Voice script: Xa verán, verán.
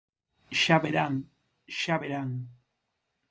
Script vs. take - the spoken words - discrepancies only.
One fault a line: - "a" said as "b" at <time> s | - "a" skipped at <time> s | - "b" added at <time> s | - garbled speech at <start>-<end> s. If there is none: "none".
- "xa" added at 1.8 s